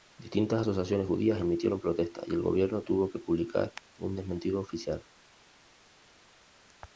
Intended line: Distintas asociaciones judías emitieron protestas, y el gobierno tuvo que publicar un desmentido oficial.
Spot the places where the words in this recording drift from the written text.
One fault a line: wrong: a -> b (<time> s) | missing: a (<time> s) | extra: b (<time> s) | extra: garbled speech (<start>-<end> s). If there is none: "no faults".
no faults